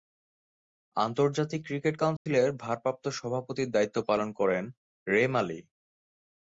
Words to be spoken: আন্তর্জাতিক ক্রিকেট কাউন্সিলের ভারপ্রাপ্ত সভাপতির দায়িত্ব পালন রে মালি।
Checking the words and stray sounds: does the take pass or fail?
fail